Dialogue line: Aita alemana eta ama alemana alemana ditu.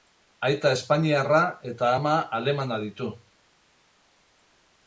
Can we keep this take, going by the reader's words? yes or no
no